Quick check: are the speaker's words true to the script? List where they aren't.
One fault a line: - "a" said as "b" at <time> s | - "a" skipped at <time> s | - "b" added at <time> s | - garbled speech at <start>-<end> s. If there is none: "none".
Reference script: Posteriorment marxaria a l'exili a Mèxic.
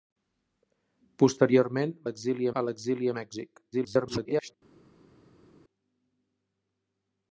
- "marxaria" said as "l'exili" at 2.1 s
- garbled speech at 3.7-4.5 s